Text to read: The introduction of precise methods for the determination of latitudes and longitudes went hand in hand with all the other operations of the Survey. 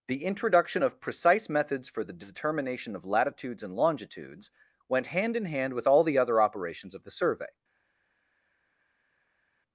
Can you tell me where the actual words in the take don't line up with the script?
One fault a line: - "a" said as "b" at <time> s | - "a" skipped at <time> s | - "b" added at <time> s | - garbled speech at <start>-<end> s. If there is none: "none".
none